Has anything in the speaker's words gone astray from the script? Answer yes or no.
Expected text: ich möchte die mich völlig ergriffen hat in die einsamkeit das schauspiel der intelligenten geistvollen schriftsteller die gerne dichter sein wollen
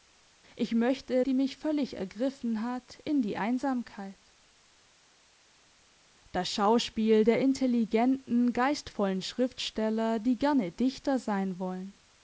no